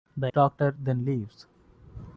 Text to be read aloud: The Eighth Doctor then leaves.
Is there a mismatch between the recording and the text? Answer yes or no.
yes